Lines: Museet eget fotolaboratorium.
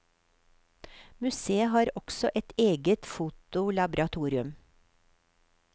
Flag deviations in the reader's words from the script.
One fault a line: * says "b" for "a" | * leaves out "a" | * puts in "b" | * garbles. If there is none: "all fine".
* puts in "har også et"